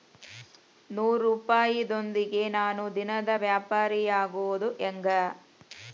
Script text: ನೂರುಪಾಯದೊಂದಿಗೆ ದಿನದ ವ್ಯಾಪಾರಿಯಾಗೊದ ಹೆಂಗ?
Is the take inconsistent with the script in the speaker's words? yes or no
yes